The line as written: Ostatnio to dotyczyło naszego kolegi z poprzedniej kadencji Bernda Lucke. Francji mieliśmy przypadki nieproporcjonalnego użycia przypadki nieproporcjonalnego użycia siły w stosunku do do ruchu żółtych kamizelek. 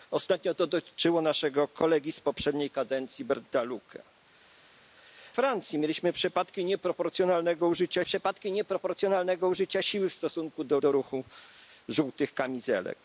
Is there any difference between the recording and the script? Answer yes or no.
no